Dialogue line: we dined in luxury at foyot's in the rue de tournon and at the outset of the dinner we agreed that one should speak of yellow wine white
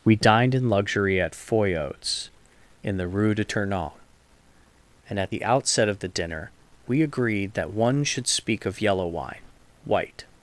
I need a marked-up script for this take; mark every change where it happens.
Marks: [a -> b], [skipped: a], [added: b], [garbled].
we dined in luxury at foyot's in the rue de tournon and at the outset of the dinner we agreed that one should speak of yellow wine white